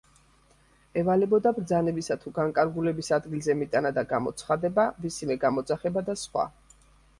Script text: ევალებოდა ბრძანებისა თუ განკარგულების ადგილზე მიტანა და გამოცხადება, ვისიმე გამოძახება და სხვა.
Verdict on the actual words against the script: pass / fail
pass